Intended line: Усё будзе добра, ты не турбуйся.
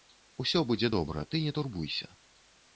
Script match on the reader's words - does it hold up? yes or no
yes